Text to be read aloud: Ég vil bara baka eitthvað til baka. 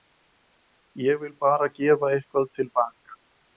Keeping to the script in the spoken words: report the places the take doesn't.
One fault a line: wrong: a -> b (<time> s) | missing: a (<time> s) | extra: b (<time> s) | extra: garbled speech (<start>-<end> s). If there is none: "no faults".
wrong: baka -> gefa (1.8 s)